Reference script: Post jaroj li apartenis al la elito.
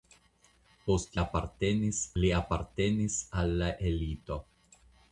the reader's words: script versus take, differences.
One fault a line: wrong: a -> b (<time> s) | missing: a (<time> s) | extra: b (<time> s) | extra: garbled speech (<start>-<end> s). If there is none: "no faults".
wrong: jaroj -> apartenis (1.2 s)